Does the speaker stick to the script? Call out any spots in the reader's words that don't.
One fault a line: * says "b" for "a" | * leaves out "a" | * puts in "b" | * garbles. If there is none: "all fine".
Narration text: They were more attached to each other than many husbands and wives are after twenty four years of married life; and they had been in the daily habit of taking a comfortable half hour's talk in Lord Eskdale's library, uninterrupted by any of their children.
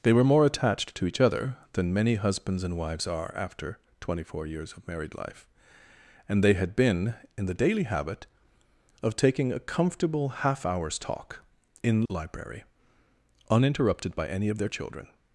* leaves out "Lord Eskdale's"